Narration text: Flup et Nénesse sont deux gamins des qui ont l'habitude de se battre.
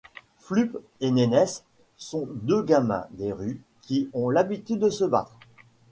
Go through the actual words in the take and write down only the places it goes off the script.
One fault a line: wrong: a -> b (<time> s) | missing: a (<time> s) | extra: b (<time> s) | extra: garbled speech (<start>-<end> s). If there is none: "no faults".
extra: rues (3.3 s)